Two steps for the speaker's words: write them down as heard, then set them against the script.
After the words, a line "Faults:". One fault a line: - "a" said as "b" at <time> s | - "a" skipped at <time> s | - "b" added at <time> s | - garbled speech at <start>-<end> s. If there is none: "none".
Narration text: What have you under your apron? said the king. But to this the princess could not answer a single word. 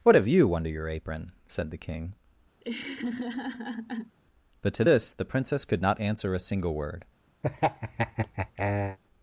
What have you under your apron? said the king. But to this the princess could not answer a single word.
Faults:
none